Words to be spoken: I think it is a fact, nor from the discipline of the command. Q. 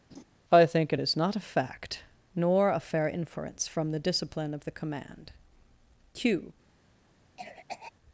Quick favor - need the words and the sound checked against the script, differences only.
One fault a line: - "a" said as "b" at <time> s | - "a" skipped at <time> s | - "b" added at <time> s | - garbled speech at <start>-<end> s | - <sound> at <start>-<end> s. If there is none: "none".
- laugh at 0.1-0.2 s
- "not" added at 1.2 s
- "a fair inference" added at 2.7 s
- cough at 7.4-7.9 s